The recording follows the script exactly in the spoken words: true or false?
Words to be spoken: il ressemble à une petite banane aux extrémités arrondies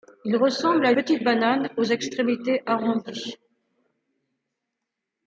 false